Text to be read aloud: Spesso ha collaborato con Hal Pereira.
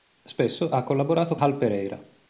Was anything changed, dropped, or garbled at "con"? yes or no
yes